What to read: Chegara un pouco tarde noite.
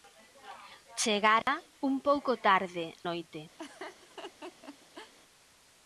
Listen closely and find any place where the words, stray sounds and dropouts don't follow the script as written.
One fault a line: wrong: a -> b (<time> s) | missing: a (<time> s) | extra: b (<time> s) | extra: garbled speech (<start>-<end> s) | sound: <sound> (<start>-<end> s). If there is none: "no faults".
sound: dropout (1.4-1.5 s)
sound: laugh (3.6-5.1 s)